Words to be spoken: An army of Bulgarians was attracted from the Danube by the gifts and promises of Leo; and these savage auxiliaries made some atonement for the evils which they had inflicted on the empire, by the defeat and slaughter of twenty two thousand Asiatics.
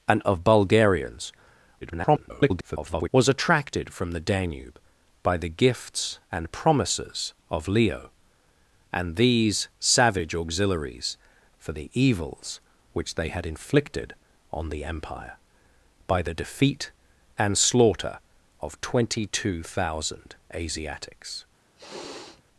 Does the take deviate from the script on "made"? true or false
true